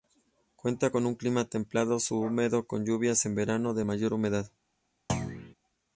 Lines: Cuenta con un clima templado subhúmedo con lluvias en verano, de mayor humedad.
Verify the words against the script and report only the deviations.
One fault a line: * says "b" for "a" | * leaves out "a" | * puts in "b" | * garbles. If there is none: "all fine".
all fine